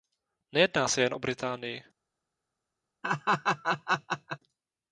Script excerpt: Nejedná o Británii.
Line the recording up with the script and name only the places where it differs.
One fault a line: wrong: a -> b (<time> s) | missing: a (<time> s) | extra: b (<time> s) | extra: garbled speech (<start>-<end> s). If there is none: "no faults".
extra: se jen (0.9 s)